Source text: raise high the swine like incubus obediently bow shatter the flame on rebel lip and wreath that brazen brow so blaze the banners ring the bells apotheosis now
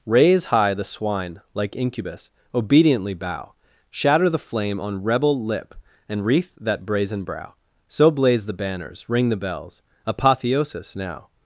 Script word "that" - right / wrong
right